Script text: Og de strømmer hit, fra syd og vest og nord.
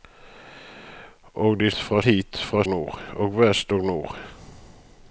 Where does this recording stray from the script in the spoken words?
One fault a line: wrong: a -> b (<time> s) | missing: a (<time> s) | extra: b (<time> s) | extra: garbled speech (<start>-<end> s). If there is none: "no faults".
wrong: strømmer -> fra (1.7 s)
wrong: syd -> nord (2.7 s)